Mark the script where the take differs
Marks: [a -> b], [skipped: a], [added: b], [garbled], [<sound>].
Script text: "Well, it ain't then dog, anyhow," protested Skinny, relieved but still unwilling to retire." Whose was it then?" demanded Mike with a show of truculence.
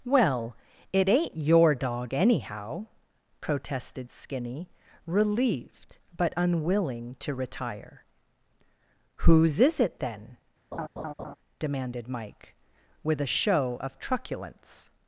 "Well, it ain't [then -> your] dog, anyhow," protested Skinny, relieved but [skipped: still] unwilling to retire." Whose [was -> is] it then?" [laugh] demanded Mike with a show of truculence.